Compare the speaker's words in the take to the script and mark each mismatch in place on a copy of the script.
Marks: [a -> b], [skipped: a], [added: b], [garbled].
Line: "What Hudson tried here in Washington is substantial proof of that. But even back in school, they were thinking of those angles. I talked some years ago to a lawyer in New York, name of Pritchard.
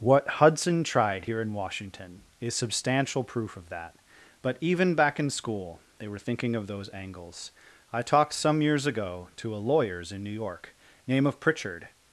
"What Hudson tried here in Washington is substantial proof of that. But even back in school, they were thinking of those angles. I talked some years ago to a [lawyer -> lawyers] in New York, name of Pritchard.